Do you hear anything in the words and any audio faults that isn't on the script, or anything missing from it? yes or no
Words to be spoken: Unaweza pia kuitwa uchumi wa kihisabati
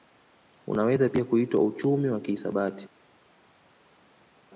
no